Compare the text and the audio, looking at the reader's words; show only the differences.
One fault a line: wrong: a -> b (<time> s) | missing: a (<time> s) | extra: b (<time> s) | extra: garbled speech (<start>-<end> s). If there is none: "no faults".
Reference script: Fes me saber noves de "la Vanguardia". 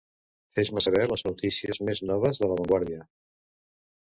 extra: les notícies més (1.1 s)